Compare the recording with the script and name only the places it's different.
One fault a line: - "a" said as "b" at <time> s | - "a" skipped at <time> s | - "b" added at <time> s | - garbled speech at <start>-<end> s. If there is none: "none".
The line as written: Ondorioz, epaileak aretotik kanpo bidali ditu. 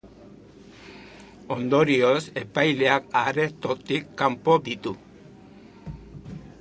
- "bidali" skipped at 4.6 s